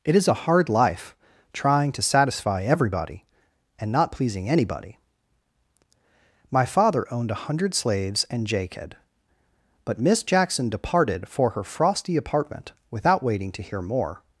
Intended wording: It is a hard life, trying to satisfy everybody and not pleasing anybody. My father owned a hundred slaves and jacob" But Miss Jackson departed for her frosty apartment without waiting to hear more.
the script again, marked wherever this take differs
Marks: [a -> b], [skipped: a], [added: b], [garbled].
It is a hard life, trying to satisfy everybody and not pleasing anybody. My father owned a hundred slaves and jacob" But Miss Jackson departed for her frosty apartment without waiting to hear more.